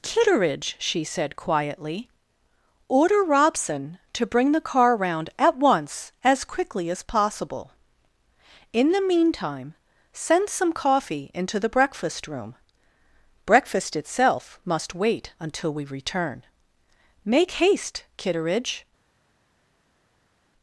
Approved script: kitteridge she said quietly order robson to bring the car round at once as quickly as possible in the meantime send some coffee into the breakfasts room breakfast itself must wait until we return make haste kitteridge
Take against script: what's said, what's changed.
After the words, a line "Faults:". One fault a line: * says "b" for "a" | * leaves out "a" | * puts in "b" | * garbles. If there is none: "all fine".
kitteridge she said quietly order robson to bring the car round at once as quickly as possible in the meantime send some coffee into the breakfast room breakfast itself must wait until we return make haste kitteridge
Faults:
* says "breakfast" for "breakfasts"